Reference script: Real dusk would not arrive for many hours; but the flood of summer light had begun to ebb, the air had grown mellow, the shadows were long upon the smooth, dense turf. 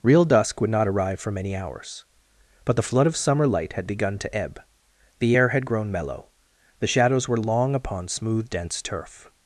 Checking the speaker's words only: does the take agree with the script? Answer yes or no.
no